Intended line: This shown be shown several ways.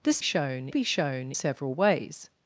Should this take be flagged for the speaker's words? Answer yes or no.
no